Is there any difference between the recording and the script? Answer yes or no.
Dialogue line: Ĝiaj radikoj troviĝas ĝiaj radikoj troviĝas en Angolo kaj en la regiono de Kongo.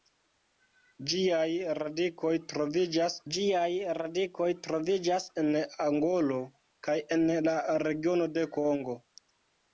no